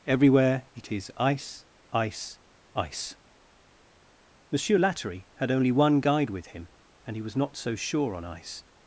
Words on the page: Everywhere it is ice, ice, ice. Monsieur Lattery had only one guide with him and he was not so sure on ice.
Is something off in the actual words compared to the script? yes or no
no